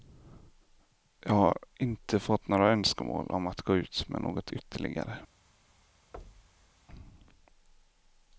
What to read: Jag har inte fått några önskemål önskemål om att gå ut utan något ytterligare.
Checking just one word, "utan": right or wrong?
wrong